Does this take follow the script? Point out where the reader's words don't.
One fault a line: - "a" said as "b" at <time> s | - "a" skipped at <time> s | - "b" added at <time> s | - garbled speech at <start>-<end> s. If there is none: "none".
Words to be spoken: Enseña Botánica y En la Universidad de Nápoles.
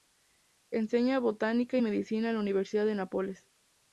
- "Medicina" added at 1.8 s